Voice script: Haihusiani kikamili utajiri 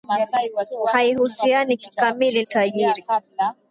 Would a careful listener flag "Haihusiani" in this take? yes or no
no